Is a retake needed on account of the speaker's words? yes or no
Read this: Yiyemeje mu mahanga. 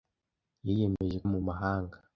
no